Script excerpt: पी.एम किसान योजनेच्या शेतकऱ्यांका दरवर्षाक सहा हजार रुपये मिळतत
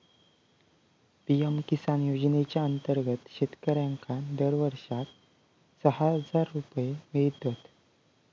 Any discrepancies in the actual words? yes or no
yes